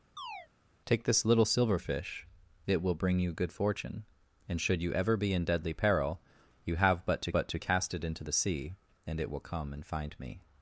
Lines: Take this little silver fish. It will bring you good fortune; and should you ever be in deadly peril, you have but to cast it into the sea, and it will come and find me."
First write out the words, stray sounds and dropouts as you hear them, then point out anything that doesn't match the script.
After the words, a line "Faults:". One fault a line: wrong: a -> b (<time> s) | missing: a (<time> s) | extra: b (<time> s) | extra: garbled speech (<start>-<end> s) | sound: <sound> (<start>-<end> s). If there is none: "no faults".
Take this little silver fish. It will bring you good fortune; and should you ever be in deadly peril, you have but to but to cast it into the sea, and it will come and find me."
Faults:
sound: chirp (0.2-0.5 s)
extra: but to (7.3 s)